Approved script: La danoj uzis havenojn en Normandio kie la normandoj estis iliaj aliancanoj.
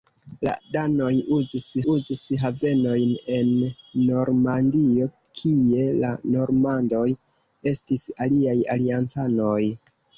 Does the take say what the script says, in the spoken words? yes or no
no